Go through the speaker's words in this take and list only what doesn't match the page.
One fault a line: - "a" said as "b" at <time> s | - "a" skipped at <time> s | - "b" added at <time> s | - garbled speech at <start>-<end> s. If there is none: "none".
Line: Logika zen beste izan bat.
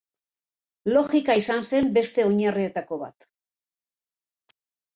- "izan" added at 1.4 s
- "izan" said as "oinarrietako" at 2.3 s